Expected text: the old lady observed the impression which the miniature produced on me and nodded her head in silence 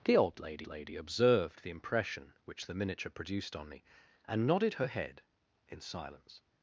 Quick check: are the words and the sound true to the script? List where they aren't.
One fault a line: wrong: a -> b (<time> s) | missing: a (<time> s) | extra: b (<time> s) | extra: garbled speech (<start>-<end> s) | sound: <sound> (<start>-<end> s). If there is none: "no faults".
extra: lady (0.7 s)